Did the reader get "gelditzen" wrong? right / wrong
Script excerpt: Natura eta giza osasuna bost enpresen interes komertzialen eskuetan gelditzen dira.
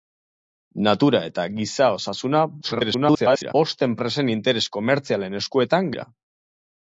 wrong